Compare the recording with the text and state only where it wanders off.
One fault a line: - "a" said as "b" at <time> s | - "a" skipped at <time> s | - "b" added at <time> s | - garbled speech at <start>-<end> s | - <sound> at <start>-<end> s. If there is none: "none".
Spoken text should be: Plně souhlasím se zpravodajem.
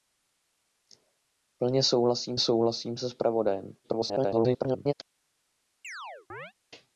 - "souhlasím" added at 2.4 s
- garbled speech at 3.8-4.9 s
- chirp at 5.8-6.5 s